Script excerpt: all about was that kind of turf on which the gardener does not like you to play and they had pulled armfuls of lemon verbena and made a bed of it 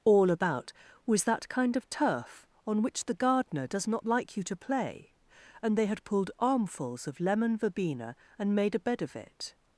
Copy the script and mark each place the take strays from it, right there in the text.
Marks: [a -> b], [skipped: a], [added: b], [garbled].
all about was that kind of turf on which the gardener does not like you to play and they had pulled armfuls of lemon verbena and made a bed of it